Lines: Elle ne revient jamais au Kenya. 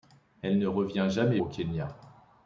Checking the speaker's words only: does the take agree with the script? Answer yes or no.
yes